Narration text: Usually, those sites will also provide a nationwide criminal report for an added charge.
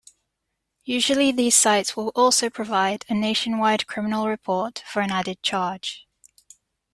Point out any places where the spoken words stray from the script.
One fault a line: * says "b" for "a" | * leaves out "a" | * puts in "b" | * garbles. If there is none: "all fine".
* says "these" for "those"